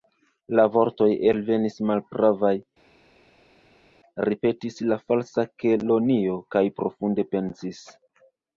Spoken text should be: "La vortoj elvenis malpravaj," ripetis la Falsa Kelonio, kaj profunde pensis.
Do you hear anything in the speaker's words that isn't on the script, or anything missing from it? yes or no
no